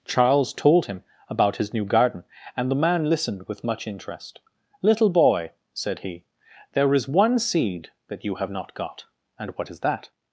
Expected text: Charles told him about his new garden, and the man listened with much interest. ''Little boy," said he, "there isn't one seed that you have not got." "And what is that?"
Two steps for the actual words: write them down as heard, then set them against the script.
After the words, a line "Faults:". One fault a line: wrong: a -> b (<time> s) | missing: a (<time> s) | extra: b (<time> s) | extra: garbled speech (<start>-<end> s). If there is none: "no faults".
Charles told him about his new garden, and the man listened with much interest. ''Little boy," said he, "there is one seed that you have not got." "And what is that?"
Faults:
wrong: isn't -> is (7.0 s)